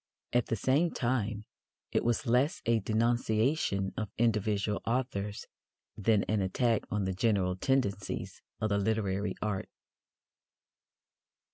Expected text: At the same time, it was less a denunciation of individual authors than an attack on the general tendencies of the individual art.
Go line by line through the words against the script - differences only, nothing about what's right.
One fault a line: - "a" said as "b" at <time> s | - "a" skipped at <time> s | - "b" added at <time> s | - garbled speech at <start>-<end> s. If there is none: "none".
- "individual" said as "literary" at 8.8 s